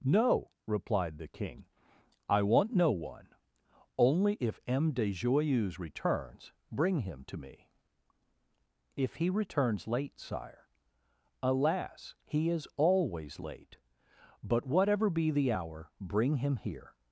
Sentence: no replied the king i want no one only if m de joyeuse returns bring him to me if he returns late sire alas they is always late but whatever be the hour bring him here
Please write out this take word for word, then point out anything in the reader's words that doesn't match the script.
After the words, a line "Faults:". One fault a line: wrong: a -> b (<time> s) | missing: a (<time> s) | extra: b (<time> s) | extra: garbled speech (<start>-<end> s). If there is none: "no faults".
no replied the king i want no one only if m de joyeuse returns bring him to me if he returns late sire alas he is always late but whatever be the hour bring him here
Faults:
wrong: they -> he (12.2 s)